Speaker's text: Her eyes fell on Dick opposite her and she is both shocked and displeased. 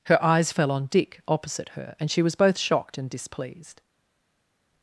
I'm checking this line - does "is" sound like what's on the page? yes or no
no